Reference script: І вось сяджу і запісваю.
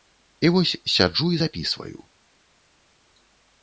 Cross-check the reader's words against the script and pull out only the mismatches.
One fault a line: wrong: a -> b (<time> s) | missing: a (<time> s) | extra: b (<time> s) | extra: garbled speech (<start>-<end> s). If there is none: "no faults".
no faults